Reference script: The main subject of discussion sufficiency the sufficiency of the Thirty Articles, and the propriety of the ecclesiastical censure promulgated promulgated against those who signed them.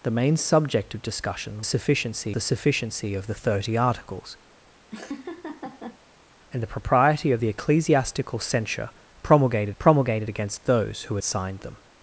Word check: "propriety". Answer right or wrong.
right